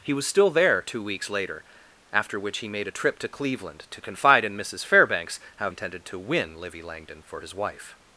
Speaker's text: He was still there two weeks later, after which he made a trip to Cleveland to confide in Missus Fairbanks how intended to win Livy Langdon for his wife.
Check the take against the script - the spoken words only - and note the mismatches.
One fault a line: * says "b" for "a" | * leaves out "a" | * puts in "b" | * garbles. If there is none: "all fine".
all fine